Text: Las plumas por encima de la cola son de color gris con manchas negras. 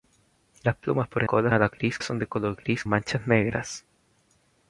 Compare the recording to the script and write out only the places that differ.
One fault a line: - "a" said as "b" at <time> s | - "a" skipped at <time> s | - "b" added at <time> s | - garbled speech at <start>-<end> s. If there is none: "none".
- "encima" said as "cola" at 1.2 s
- "cola" said as "gris" at 1.7 s
- "con" skipped at 2.8 s